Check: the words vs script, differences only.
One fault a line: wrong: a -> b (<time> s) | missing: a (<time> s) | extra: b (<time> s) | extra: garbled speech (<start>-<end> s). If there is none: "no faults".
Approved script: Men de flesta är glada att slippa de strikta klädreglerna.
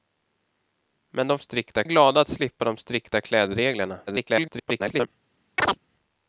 wrong: flesta -> strikta (1.4 s)
extra: garbled speech (4.1-5.1 s)